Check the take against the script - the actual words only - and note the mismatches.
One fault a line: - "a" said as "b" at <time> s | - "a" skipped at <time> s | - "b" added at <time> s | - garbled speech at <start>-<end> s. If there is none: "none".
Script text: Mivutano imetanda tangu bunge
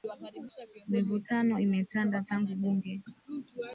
none